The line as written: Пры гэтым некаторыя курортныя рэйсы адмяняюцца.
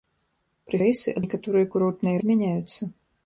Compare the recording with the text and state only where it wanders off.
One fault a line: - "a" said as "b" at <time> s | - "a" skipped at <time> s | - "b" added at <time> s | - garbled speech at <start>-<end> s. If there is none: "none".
- "гэтым" said as "рэйсы" at 0.9 s
- "рэйсы" skipped at 2.2 s